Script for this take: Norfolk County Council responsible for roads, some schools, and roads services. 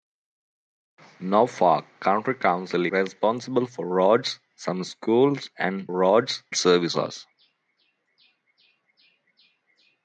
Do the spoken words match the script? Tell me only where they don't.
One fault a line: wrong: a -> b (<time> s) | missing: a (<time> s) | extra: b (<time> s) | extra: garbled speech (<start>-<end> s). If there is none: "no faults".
no faults